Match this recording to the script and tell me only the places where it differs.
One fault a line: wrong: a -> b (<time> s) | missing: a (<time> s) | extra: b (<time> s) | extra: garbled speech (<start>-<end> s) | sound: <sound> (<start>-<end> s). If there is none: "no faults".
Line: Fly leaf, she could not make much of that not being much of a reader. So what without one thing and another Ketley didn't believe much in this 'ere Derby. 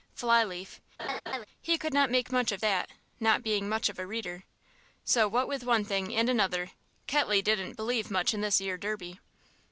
sound: laugh (1.0-1.5 s)
wrong: she -> he (1.6 s)
wrong: without -> with (5.5 s)